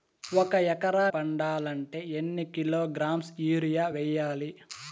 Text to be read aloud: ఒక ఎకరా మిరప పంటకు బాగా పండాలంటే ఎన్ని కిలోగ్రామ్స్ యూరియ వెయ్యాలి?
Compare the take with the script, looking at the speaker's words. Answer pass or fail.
fail